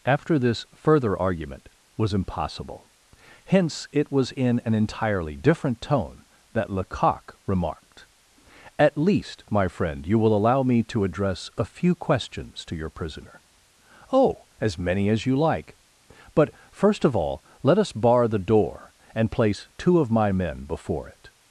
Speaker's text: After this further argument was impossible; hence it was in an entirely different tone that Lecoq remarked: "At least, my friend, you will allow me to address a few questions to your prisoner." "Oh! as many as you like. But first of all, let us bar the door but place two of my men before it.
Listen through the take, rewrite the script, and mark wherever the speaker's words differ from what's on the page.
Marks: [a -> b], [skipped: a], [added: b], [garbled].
After this further argument was impossible; hence it was in an entirely different tone that Lecoq remarked: "At least, my friend, you will allow me to address a few questions to your prisoner." "Oh! as many as you like. But first of all, let us bar the door [but -> and] place two of my men before it.